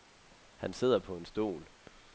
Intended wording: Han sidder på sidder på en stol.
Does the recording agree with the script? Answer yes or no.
no